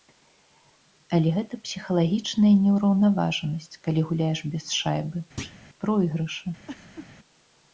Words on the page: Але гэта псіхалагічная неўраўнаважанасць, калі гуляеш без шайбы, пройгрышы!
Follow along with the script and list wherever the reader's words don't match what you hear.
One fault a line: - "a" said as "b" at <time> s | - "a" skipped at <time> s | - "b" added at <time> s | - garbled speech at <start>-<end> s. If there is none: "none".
none